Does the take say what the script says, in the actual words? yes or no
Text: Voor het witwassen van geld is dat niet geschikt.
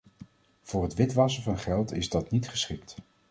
yes